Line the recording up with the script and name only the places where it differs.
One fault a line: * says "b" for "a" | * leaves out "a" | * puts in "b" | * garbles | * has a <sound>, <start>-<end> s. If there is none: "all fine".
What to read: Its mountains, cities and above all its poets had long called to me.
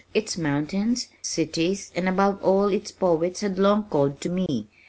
* has a dropout, 4.5-4.5 s